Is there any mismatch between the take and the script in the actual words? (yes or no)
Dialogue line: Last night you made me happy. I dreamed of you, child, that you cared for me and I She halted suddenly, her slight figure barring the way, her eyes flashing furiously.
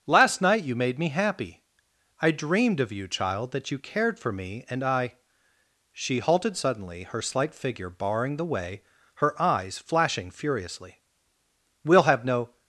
yes